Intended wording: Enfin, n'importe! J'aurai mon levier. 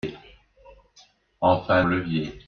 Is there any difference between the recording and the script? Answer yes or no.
yes